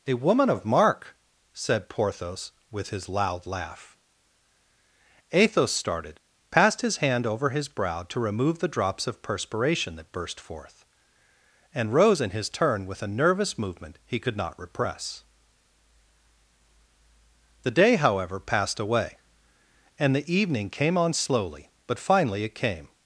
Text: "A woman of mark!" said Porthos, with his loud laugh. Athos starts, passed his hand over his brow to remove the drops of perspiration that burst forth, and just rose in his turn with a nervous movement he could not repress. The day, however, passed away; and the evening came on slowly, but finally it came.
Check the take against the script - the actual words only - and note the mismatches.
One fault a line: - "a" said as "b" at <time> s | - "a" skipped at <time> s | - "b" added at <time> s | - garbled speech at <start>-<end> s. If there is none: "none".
- "starts" said as "started" at 5.7 s
- "just" skipped at 11.9 s